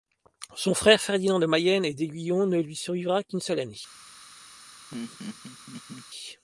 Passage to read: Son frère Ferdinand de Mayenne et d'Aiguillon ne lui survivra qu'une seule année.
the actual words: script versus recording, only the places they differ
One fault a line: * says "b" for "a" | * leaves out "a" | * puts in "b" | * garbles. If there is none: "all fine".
all fine